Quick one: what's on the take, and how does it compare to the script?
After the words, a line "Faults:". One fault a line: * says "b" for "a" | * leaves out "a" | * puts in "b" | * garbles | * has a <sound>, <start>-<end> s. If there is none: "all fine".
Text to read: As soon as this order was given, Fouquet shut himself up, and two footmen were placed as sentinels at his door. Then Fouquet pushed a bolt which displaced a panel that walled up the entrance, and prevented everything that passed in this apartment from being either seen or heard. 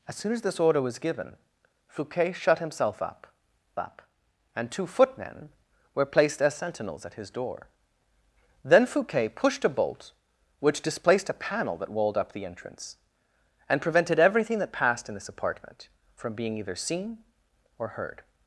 As soon as this order was given, Fouquet shut himself up up, and two footmen were placed as sentinels at his door. Then Fouquet pushed a bolt which displaced a panel that walled up the entrance, and prevented everything that passed in this apartment from being either seen or heard.
Faults:
* puts in "up"